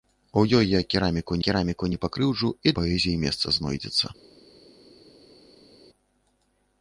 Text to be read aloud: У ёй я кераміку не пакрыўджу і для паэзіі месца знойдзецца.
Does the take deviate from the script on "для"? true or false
true